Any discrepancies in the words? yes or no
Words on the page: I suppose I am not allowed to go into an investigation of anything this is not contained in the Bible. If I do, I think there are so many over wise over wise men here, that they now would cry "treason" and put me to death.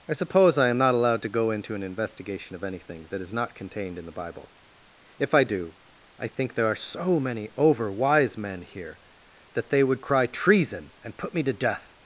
yes